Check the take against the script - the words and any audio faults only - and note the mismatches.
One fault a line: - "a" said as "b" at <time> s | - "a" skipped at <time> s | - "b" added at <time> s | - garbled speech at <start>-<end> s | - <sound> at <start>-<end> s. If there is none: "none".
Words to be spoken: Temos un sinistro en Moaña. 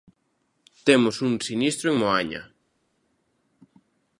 none